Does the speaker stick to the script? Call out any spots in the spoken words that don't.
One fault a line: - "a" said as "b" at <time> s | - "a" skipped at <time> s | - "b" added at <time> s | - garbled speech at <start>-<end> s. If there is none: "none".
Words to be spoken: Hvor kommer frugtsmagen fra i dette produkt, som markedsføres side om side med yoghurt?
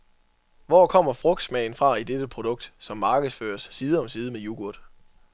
none